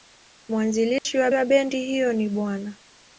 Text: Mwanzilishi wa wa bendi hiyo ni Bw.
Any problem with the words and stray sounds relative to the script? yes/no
yes